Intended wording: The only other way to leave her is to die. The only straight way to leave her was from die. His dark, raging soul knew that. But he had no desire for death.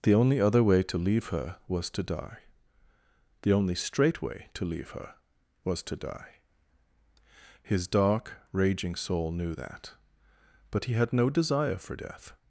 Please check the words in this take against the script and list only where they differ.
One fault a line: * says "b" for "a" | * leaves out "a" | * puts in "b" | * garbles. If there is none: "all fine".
* says "was" for "is"
* says "to" for "from"